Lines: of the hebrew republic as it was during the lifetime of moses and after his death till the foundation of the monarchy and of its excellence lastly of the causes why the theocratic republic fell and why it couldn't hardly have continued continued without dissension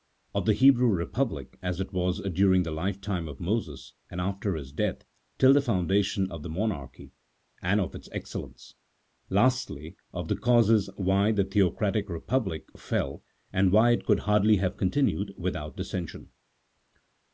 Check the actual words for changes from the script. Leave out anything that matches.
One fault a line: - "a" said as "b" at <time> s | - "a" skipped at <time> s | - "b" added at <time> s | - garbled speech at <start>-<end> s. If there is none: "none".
- "couldn't" said as "could" at 14.0 s
- "continued" skipped at 15.3 s